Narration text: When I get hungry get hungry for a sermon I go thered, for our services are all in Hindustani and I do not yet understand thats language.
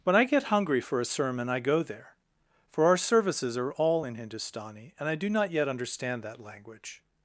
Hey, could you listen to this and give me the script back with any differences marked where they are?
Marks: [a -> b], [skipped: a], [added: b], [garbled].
When I get hungry [skipped: get hungry] for a sermon I go [thered, -> there] for our services are all in Hindustani and I do not yet understand [thats -> that] language.